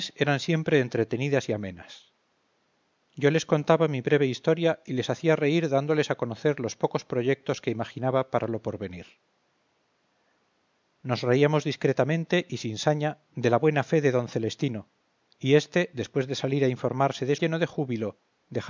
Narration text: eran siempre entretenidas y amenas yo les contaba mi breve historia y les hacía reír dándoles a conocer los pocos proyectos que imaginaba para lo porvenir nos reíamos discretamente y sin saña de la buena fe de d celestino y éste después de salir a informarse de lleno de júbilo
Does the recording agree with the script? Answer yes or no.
yes